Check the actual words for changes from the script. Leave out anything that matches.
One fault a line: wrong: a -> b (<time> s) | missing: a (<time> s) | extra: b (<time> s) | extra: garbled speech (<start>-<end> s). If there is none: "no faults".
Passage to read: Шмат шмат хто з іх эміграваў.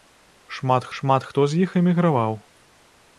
no faults